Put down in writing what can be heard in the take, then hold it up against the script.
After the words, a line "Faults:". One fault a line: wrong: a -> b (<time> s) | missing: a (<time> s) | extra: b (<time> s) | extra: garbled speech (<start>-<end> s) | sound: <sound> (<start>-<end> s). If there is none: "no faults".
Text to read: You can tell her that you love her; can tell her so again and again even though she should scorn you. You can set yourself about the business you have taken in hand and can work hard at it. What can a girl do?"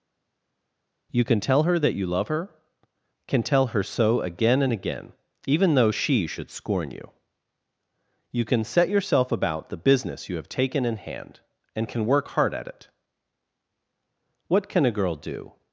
You can tell her that you love her; can tell her so again and again even though she should scorn you. You can set yourself about the business you have taken in hand and can work hard at it. What can a girl do?"
Faults:
no faults